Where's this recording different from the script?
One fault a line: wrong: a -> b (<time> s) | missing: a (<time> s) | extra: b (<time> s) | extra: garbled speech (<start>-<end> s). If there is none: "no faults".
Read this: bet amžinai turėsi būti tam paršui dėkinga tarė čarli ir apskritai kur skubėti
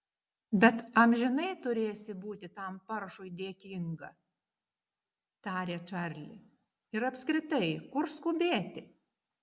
no faults